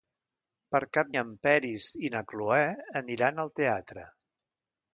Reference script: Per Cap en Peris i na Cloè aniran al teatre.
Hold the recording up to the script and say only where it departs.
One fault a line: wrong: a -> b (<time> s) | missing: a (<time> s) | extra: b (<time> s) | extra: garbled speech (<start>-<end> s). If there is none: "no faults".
no faults